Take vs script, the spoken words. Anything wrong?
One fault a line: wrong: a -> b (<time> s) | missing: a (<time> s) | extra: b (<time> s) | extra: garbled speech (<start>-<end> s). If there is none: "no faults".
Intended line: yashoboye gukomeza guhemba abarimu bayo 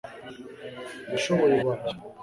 missing: gukomeza guhemba abarimu (1.6 s)